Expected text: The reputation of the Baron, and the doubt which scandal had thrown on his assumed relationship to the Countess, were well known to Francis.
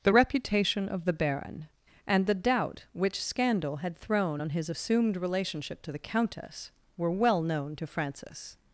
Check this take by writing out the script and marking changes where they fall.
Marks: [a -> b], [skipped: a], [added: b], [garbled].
The reputation of the Baron, and the doubt which scandal had thrown on his assumed relationship to the Countess, were well known to Francis.